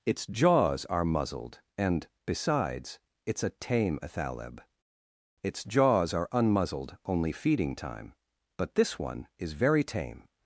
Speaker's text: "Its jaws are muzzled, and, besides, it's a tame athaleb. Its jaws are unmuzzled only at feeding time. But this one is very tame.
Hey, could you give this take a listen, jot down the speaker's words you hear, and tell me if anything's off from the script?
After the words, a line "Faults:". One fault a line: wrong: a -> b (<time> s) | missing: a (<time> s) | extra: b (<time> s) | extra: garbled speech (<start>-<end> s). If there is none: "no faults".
"Its jaws are muzzled, and, besides, it's a tame athaleb. Its jaws are unmuzzled only feeding time. But this one is very tame.
Faults:
missing: at (7.3 s)